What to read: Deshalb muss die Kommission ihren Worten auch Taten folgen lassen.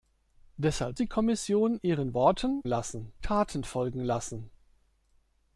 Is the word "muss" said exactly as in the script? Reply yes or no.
no